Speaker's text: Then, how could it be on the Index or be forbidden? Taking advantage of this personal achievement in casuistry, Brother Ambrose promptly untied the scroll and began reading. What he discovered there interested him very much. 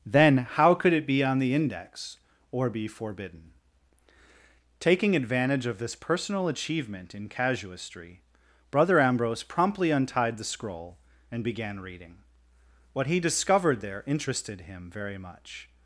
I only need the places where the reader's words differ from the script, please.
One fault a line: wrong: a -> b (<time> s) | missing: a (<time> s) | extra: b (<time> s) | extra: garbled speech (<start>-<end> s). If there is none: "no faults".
no faults